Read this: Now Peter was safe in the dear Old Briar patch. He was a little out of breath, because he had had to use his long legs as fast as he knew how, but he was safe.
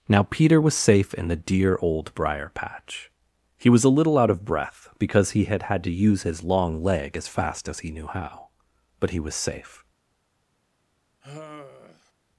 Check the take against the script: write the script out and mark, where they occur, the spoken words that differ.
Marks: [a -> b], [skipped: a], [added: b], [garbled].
Now Peter was safe in the dear Old Briar patch. He was a little out of breath, because he had had to use his long [legs -> leg] as fast as he knew how, but he was safe.